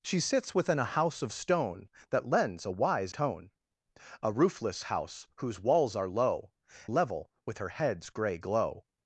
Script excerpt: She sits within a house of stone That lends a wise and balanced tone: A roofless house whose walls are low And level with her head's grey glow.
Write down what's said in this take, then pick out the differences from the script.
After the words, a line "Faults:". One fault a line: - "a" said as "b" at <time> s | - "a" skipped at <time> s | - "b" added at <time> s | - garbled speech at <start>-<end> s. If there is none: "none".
She sits within a house of stone That lends a wise tone: A roofless house whose walls are low Level with her head's grey glow.
Faults:
- "and balanced" skipped at 3.1 s
- "And" skipped at 6.5 s